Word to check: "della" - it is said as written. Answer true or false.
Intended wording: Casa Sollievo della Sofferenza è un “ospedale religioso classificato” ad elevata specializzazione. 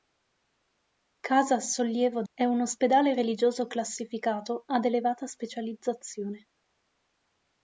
false